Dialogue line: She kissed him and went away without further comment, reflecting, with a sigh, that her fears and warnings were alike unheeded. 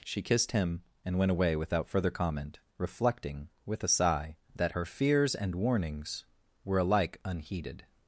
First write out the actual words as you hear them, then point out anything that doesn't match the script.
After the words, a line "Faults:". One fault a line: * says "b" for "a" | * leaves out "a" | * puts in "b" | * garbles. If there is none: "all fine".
She kissed him and went away without further comment, reflecting, with a sigh, that her fears and warnings were alike unheeded.
Faults:
all fine